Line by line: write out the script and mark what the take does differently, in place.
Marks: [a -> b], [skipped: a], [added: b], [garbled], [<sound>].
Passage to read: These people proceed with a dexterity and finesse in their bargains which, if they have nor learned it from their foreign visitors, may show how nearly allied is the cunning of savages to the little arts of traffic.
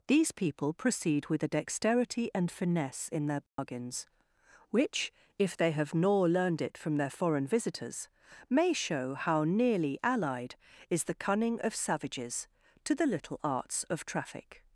These people proceed with a dexterity and finesse in their bargains [dropout] which, if they have nor learned it from their foreign visitors, may show how nearly allied is the cunning of savages to the little arts of traffic.